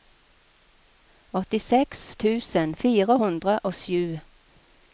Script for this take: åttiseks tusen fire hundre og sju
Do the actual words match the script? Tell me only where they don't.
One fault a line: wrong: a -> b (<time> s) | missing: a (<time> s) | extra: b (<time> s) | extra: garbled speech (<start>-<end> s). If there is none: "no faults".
no faults